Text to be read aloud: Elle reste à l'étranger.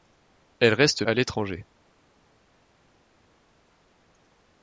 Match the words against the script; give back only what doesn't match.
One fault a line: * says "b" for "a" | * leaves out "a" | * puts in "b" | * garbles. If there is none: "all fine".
all fine